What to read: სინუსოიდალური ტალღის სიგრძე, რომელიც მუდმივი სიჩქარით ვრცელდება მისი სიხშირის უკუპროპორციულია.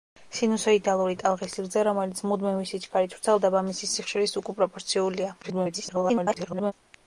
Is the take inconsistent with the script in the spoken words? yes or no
yes